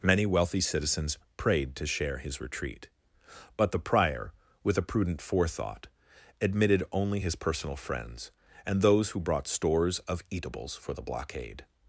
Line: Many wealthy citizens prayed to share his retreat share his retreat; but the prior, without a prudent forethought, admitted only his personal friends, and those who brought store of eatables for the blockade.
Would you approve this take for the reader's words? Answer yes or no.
no